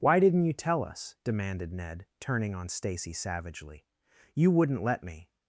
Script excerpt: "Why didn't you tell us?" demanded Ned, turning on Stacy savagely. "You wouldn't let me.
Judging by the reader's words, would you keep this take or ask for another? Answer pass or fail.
pass